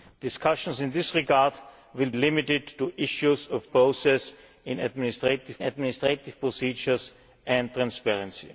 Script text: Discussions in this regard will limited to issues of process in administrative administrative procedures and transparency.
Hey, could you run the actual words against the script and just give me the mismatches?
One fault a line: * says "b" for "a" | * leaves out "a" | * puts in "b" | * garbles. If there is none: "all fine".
all fine